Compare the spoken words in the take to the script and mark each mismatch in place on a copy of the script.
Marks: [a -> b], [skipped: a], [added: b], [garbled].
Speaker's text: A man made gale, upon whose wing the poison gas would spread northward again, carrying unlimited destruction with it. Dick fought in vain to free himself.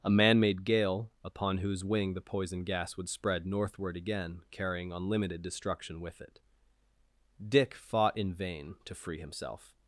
A man made gale, upon whose wing the poison gas would spread northward again, carrying unlimited destruction with it. Dick fought in vain to free himself.